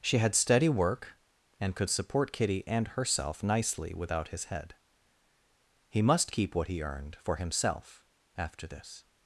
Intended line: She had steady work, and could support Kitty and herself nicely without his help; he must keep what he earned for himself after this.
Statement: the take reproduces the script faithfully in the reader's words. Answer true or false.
false